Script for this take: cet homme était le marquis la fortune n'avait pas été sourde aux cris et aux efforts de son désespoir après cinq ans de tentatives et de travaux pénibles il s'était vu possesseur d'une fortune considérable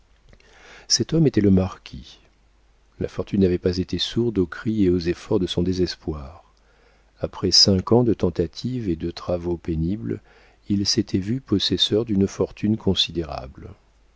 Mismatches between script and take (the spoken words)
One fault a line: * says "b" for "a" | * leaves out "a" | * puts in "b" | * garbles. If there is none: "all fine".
all fine